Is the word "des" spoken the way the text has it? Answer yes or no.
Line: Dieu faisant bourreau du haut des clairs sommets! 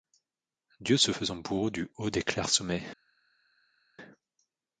yes